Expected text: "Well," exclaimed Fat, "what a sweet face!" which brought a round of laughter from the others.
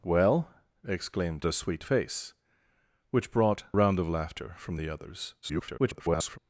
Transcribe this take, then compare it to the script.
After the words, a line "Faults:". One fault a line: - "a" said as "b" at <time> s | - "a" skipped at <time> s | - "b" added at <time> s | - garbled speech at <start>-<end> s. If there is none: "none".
"Well," exclaimed A sweet face!" which brought round of laughter from the others. [garbled]
Faults:
- "Fat what" skipped at 1.4 s
- "a" skipped at 3.6 s
- garbled speech at 5.4-6.4 s